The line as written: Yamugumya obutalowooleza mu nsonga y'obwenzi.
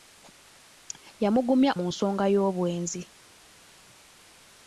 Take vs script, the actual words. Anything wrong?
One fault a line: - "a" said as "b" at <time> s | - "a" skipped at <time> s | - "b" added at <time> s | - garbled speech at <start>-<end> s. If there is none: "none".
- "obutalowooleza" skipped at 1.7 s